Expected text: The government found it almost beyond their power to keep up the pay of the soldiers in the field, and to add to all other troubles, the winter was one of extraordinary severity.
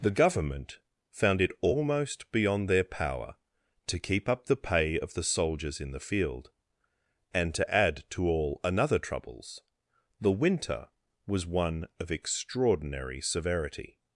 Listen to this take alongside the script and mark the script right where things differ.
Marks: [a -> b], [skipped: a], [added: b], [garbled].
The government found it almost beyond their power to keep up the pay of the soldiers in the field, and to add to all [other -> another] troubles, the winter was one of extraordinary severity.